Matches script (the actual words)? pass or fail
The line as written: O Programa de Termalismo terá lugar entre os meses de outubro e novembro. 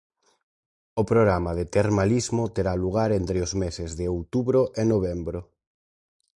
pass